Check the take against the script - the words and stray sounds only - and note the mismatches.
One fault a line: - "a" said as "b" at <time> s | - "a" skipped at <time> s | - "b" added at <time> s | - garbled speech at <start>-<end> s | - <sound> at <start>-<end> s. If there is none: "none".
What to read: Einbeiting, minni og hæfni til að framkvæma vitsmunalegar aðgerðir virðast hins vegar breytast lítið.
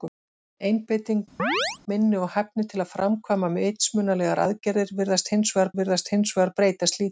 - chirp at 1.4-1.8 s
- "virðast hins vegar" added at 5.8 s